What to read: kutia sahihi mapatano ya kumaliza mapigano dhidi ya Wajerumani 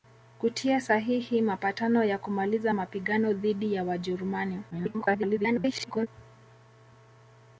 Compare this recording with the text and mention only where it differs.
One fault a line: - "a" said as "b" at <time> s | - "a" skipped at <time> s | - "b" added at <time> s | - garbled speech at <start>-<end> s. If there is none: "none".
- garbled speech at 4.7-6.1 s